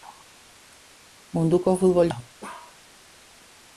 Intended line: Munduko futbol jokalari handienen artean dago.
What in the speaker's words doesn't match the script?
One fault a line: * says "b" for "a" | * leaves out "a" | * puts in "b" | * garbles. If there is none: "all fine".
* leaves out "jokalari handienen artean"